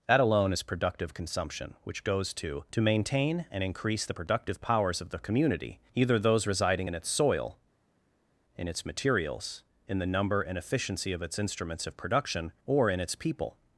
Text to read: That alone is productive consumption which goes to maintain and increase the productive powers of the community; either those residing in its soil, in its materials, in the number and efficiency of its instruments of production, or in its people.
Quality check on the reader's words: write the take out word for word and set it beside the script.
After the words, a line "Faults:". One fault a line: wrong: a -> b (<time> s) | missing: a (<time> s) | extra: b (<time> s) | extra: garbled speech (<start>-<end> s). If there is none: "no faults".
That alone is productive consumption which goes to to maintain and increase the productive powers of the community; either those residing in its soil, in its materials, in the number and efficiency of its instruments of production, or in its people.
Faults:
extra: to (2.7 s)